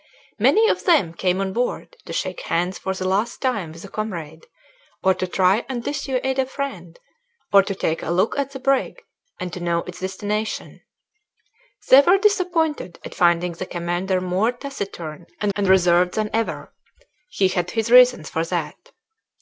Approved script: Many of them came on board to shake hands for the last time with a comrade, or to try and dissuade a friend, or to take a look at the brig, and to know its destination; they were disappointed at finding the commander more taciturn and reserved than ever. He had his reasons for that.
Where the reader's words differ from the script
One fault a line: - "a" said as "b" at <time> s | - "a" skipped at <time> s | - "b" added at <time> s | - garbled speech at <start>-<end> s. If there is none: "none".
- "and" added at 15.5 s